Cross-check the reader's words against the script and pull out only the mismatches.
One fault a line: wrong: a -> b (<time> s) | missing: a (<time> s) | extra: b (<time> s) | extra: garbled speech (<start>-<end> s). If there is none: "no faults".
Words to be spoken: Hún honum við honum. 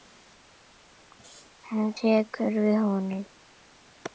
wrong: honum -> tekur (2.0 s)